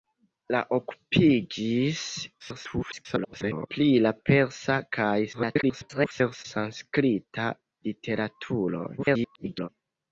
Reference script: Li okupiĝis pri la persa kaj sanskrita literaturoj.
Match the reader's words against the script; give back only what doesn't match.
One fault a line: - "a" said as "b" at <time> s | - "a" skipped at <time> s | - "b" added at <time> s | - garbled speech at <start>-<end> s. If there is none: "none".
- garbled speech at 2.4-3.7 s
- garbled speech at 5.3-6.5 s
- garbled speech at 9.0-9.7 s